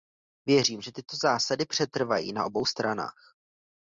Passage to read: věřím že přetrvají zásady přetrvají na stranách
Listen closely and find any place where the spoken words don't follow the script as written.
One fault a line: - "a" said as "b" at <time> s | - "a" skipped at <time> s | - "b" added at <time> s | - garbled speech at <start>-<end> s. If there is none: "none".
- "přetrvají" said as "tyto" at 0.9 s
- "obou" added at 2.4 s